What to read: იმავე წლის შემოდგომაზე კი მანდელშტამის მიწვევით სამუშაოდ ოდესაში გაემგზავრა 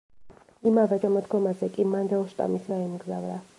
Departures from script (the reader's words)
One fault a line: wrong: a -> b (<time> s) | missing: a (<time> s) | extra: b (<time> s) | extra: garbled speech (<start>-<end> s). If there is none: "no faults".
missing: წლის (1.0 s)
missing: მიწვევით სამუშაოდ ოდესაში (2.7 s)